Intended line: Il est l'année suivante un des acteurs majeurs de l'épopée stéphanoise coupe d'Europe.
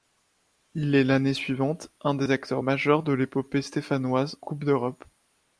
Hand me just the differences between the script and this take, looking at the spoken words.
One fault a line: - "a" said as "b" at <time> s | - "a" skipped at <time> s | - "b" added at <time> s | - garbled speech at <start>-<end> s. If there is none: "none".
none